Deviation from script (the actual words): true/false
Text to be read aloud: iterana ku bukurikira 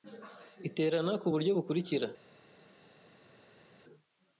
true